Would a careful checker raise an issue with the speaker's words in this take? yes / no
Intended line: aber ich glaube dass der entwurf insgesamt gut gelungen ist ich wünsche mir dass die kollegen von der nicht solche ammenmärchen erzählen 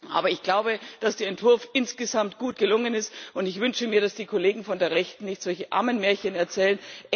yes